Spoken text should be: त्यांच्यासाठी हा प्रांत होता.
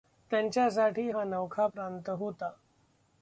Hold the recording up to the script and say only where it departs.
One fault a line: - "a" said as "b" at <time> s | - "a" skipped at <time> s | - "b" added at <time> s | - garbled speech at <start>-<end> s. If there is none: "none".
- "नवखा" added at 1.2 s